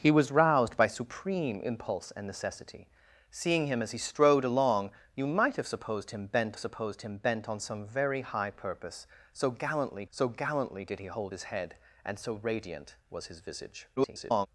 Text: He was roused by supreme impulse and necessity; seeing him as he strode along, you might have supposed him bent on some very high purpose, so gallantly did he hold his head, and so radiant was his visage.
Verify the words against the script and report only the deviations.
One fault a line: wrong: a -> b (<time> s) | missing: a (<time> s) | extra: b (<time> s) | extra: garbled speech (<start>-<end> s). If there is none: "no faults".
extra: supposed him bent (6.6 s)
extra: so gallantly (10.1 s)
extra: garbled speech (14.0-14.5 s)